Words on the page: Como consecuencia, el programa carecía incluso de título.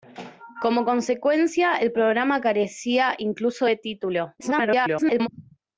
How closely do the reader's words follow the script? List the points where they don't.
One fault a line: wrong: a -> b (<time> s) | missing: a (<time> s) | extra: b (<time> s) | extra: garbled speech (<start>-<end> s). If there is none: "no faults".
extra: garbled speech (4.4-5.3 s)